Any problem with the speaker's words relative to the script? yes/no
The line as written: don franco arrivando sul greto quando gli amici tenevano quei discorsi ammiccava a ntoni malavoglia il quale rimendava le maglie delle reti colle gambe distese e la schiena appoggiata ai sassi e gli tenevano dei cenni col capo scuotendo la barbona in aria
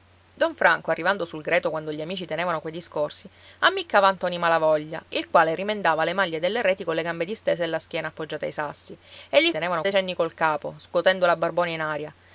no